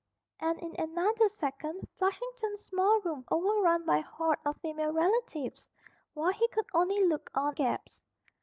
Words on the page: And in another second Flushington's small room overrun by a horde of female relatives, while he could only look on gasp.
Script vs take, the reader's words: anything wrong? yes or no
no